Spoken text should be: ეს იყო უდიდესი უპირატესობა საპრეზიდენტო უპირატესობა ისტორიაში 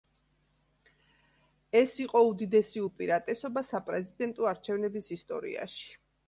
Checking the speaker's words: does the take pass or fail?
fail